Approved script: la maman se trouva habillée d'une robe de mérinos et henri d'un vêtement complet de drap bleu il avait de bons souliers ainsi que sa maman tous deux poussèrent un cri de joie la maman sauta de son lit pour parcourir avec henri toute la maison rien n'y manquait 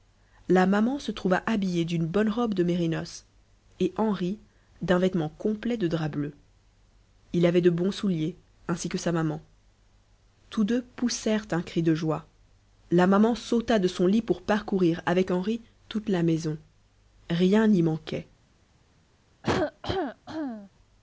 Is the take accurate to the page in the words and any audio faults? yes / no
no